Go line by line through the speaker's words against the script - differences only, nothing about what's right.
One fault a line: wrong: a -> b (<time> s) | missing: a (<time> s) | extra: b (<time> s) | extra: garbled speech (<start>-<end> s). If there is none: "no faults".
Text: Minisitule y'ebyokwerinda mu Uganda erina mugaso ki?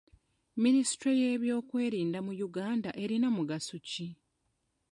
no faults